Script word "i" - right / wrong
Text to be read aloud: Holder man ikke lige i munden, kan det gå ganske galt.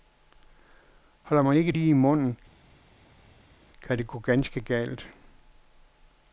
right